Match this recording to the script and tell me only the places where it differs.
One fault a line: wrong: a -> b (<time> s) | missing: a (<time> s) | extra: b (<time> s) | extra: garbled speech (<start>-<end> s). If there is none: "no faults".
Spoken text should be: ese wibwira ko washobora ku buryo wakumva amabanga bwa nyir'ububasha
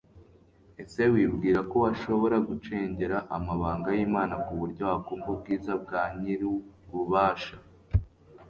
extra: gucengera amabanga y'imana (2.5 s)
wrong: amabanga -> ubwiza (5.3 s)